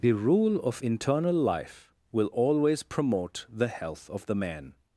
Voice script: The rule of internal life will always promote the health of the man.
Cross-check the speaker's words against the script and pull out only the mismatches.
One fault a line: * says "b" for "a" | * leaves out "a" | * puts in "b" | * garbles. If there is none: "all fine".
all fine